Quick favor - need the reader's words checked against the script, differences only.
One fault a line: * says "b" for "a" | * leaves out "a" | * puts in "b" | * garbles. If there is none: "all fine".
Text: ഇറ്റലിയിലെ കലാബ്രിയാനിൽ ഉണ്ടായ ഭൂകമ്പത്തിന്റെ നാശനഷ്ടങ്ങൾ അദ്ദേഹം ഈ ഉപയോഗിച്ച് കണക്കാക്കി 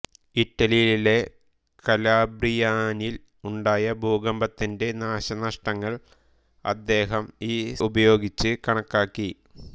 all fine